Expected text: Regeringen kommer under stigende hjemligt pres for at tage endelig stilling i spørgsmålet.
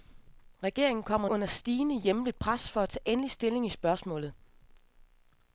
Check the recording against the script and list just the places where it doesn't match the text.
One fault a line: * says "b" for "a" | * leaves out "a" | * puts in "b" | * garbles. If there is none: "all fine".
all fine